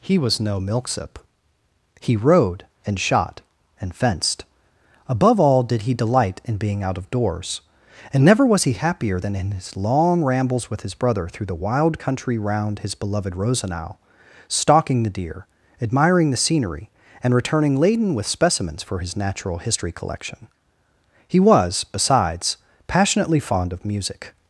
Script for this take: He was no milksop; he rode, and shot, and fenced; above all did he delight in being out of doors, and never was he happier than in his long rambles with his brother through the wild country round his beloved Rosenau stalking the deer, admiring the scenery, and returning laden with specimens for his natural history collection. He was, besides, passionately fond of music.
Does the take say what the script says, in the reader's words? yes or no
yes